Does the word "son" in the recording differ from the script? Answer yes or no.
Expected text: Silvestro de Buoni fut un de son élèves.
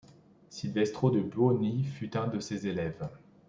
yes